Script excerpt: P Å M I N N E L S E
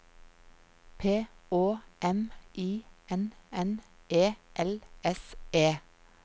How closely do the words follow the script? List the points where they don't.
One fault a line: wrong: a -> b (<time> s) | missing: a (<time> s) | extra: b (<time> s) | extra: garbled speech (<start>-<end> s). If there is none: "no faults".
no faults